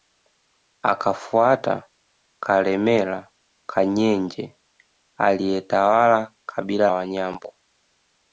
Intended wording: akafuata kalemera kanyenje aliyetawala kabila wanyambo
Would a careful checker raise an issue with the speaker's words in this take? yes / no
no